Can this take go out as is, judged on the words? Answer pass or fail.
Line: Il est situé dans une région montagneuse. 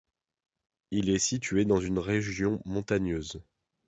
pass